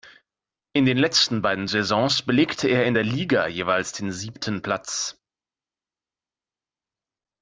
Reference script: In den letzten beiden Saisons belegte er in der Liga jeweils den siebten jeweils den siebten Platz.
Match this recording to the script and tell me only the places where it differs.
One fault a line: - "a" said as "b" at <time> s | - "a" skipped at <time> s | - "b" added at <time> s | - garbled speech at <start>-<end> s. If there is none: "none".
- "jeweils den siebten" skipped at 4.6 s